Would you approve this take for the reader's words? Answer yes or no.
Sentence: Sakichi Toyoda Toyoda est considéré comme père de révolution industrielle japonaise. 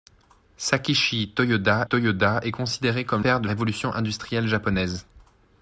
yes